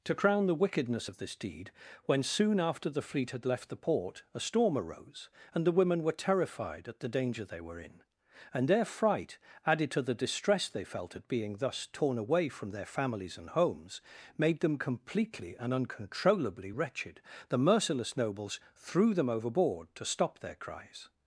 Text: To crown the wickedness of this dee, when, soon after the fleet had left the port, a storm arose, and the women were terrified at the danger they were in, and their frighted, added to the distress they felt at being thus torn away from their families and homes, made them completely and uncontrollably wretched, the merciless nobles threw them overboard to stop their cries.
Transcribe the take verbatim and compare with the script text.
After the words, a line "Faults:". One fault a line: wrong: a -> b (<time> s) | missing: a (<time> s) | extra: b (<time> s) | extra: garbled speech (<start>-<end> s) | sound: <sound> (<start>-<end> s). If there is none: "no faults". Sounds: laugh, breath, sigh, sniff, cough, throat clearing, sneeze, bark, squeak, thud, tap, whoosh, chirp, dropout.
To crown the wickedness of this deed, when, soon after the fleet had left the port, a storm arose, and the women were terrified at the danger they were in, and their fright, added to the distress they felt at being thus torn away from their families and homes, made them completely and uncontrollably wretched, the merciless nobles threw them overboard to stop their cries.
Faults:
wrong: dee -> deed (1.3 s)
wrong: frighted -> fright (8.8 s)